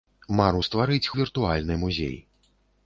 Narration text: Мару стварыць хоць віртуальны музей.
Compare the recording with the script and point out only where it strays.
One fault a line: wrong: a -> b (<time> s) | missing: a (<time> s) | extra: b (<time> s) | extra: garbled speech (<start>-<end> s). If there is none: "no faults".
missing: хоць (1.1 s)